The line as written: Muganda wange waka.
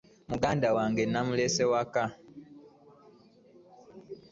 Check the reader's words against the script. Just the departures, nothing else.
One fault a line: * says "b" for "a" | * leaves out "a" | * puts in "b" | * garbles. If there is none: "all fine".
* puts in "namulese"